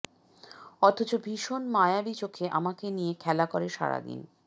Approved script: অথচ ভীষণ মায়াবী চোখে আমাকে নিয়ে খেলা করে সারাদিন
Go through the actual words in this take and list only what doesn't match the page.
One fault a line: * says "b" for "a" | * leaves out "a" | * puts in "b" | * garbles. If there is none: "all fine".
all fine